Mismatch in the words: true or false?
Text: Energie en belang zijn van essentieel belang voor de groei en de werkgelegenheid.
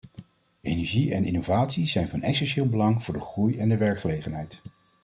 true